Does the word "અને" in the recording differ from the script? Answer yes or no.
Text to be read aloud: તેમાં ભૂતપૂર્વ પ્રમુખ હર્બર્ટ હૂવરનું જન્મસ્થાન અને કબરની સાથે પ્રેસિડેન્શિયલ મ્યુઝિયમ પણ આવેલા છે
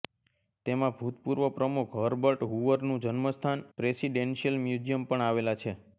yes